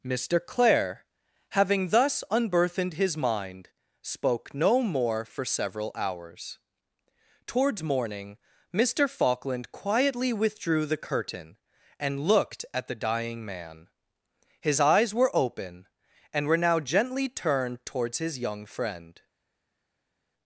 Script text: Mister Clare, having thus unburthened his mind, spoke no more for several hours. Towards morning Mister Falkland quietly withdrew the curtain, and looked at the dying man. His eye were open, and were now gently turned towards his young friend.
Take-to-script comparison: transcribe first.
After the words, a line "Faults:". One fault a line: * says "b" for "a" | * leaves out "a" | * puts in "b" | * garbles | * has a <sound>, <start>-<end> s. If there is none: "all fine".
Mister Clare, having thus unburthened his mind, spoke no more for several hours. Towards morning Mister Falkland quietly withdrew the curtain, and looked at the dying man. His eyes were open, and were now gently turned towards his young friend.
Faults:
* says "eyes" for "eye"